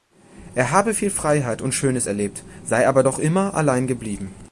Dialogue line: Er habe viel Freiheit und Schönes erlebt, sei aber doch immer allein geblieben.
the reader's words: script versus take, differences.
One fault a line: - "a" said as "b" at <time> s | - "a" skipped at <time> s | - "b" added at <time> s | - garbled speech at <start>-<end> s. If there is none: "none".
none